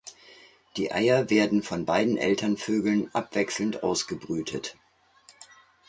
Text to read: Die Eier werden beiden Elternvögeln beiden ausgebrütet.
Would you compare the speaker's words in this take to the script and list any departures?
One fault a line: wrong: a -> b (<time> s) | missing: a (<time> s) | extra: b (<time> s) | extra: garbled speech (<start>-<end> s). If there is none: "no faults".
extra: von (1.6 s)
wrong: beiden -> abwechselnd (3.1 s)